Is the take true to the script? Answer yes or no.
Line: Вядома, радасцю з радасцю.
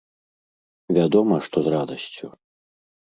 no